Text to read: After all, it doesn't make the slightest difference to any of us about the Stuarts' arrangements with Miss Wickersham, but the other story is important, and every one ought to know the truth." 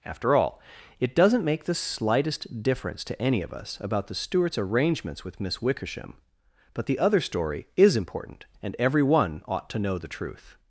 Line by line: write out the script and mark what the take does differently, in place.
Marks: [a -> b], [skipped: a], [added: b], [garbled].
After all, it doesn't make the slightest difference to any of us about the Stuarts' arrangements with Miss Wickersham, but the other story is important, and every one ought to know the truth."